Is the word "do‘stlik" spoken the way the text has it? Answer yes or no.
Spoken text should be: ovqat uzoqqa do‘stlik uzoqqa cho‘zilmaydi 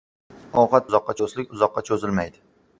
yes